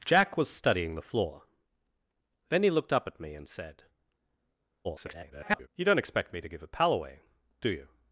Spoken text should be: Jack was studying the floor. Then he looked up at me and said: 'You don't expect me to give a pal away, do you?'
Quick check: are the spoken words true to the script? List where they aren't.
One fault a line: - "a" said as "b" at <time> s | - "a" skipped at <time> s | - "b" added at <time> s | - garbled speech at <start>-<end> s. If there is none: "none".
- garbled speech at 4.8-5.7 s